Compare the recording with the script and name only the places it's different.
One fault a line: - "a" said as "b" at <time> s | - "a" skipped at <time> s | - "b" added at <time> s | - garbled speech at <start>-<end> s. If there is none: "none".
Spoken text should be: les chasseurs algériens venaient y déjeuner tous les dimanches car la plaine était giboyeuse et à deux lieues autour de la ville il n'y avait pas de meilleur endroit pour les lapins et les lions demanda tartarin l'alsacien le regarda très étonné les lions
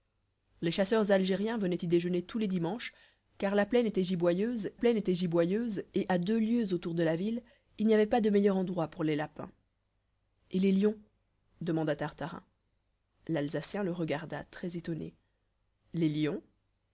- "plaine était giboyeuse" added at 4.7 s